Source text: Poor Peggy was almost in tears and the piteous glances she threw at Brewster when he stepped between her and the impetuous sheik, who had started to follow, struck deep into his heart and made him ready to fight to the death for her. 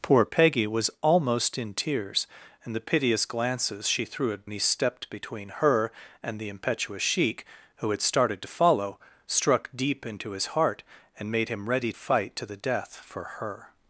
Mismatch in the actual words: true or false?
true